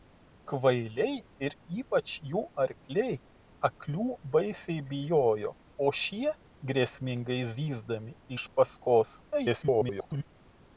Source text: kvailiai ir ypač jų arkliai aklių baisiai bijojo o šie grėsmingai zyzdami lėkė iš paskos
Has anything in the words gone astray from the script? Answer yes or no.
yes